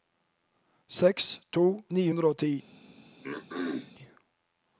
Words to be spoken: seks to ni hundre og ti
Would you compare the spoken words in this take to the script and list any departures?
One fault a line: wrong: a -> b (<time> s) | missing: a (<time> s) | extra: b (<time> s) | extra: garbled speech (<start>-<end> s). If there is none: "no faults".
no faults